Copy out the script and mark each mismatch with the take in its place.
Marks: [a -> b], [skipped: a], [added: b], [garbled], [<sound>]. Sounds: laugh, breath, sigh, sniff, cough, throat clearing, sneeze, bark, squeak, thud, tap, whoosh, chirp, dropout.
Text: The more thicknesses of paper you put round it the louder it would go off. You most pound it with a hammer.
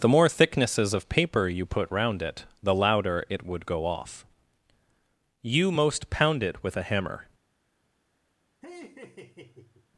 The more thicknesses of paper you put round it the louder it would go off. You most pound it with a hammer. [laugh]